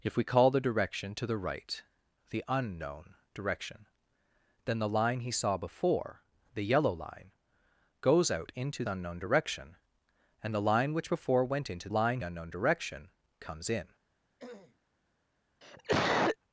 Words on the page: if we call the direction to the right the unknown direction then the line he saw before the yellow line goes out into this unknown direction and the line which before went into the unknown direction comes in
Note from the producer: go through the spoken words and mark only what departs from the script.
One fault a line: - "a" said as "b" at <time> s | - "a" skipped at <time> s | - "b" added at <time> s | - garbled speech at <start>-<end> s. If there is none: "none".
- "this" skipped at 8.8 s
- "the" said as "line" at 11.9 s